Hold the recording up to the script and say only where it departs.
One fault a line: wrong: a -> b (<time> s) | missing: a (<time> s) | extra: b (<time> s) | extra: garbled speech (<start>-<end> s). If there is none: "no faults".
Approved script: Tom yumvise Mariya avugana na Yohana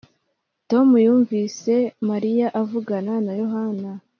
no faults